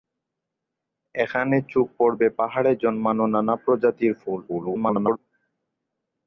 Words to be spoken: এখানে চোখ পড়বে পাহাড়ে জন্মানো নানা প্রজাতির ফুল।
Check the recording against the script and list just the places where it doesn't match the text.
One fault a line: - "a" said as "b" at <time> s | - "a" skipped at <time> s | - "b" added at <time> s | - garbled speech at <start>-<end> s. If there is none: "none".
- garbled speech at 4.5-5.2 s